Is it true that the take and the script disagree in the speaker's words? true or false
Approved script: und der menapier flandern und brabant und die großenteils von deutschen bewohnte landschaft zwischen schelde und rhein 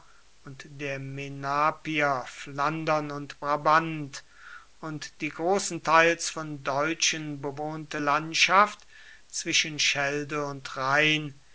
false